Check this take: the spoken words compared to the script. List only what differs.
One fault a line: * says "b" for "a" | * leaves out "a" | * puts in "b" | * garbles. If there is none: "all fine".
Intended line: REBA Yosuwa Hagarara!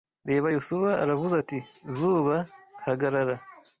* puts in "Aravuze ati zuba"